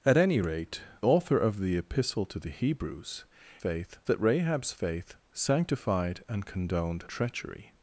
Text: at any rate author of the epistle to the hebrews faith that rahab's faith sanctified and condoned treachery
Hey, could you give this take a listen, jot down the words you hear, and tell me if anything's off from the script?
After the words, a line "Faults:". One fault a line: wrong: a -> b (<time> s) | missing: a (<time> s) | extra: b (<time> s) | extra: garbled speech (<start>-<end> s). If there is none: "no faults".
at any rate author of the epistle to the hebrews faith that rahab's faith sanctified and condoned treachery
Faults:
no faults